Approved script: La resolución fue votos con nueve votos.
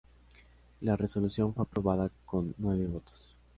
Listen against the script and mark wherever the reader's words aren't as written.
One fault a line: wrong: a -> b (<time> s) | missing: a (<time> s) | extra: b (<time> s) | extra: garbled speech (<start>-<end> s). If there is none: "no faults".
wrong: votos -> aprobada (1.6 s)